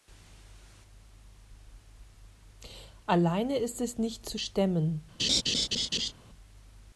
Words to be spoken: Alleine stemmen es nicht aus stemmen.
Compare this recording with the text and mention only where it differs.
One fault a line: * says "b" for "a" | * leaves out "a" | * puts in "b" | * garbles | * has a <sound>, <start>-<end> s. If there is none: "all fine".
* says "ist" for "stemmen"
* says "zu" for "aus"
* has a laugh, 5.2-6.1 s